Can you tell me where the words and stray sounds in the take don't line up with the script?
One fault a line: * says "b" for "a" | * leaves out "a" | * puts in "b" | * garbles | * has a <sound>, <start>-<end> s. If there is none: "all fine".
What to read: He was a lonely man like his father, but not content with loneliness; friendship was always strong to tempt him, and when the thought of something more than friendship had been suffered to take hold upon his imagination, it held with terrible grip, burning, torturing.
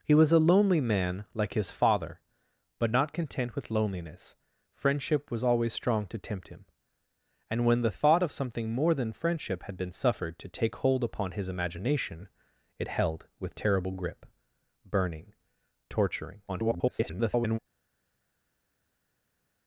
* garbles